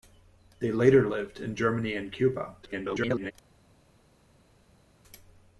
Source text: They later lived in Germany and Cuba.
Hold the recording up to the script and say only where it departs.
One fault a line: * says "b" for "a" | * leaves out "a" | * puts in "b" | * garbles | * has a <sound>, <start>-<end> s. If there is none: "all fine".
* garbles